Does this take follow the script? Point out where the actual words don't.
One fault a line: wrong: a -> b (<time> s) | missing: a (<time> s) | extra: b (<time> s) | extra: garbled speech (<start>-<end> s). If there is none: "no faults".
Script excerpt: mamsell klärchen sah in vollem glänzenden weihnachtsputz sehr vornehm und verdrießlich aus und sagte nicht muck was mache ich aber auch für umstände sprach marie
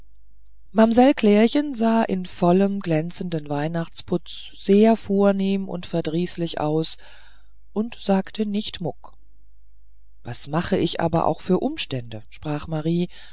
no faults